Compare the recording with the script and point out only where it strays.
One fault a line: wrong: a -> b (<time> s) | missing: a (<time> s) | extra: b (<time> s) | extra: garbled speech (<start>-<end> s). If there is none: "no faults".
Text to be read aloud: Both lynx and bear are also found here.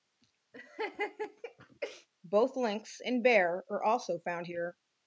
no faults